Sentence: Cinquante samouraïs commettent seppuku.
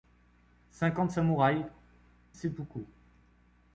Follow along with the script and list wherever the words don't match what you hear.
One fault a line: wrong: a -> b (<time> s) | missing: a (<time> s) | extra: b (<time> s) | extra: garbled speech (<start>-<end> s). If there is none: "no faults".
missing: commettent (1.7 s)